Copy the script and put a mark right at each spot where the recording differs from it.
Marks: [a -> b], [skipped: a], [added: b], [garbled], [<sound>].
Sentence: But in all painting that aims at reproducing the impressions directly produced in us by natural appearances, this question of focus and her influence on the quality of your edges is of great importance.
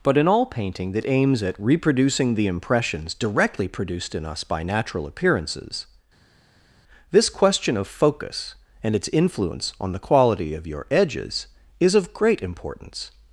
But in all painting that aims at reproducing the impressions directly produced in us by natural appearances, this question of focus and [her -> its] influence on the quality of your edges is of great importance.